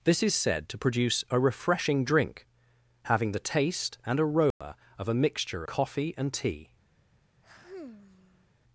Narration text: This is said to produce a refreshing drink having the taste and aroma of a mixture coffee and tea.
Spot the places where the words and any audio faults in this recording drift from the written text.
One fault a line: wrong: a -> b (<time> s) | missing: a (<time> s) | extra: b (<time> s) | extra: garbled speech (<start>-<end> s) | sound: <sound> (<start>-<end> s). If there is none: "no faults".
sound: dropout (4.5-4.6 s)
sound: sigh (7.4-8.5 s)